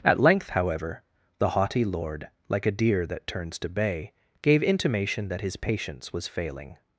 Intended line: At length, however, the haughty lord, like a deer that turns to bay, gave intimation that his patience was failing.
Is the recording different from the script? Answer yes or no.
no